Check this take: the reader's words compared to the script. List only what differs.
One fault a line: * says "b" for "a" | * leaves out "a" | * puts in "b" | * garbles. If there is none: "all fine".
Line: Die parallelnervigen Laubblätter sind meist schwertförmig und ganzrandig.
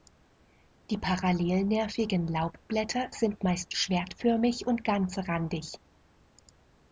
all fine